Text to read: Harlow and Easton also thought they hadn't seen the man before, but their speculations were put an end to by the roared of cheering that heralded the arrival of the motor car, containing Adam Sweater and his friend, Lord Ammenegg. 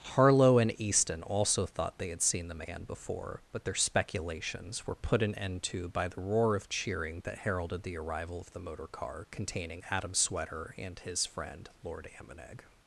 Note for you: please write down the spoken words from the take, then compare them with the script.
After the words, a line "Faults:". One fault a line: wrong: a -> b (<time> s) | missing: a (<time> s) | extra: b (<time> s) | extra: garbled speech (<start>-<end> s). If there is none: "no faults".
Harlow and Easton also thought they had seen the man before, but their speculations were put an end to by the roar of cheering that heralded the arrival of the motor car, containing Adam Sweater and his friend, Lord Ammenegg.
Faults:
wrong: hadn't -> had (2.1 s)
wrong: roared -> roar (6.2 s)